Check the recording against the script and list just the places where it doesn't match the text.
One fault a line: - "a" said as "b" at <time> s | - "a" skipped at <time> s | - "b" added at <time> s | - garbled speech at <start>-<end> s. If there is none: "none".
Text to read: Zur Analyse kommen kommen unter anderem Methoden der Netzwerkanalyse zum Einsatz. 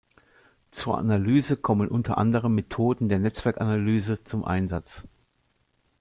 - "kommen" skipped at 1.9 s